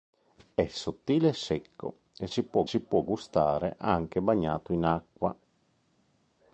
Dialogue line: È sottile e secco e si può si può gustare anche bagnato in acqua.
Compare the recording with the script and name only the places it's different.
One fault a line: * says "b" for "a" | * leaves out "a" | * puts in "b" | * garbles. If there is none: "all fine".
all fine